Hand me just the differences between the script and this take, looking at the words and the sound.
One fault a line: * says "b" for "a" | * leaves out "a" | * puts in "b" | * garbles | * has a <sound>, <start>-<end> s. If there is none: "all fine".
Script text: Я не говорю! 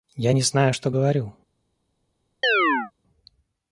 * puts in "знаю что"
* has a chirp, 2.4-2.9 s